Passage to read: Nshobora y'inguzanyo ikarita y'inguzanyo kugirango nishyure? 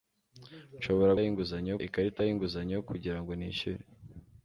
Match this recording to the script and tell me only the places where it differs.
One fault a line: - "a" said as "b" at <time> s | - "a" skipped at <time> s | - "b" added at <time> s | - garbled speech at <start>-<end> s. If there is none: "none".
none